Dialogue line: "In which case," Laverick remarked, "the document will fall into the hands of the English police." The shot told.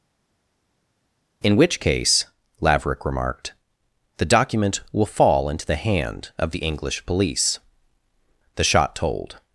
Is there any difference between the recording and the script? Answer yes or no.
yes